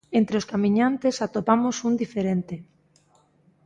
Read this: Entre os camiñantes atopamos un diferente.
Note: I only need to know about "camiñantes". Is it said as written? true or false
true